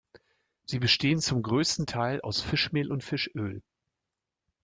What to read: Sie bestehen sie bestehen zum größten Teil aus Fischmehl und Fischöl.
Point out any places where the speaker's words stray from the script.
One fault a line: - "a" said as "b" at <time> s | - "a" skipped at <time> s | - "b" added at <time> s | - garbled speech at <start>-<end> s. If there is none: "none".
- "sie bestehen" skipped at 1.2 s